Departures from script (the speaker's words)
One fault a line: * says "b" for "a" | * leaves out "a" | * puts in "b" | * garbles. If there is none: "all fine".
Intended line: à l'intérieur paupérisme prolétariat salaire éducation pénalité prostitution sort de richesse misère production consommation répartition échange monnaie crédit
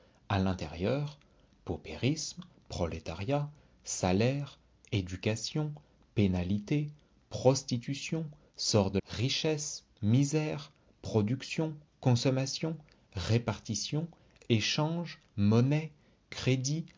all fine